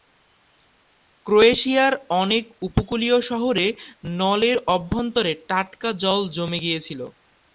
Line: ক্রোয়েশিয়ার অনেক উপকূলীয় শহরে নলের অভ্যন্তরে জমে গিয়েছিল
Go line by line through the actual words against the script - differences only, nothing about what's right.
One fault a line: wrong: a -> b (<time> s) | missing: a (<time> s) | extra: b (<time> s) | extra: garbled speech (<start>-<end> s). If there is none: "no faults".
extra: টাটকা জল (5.5 s)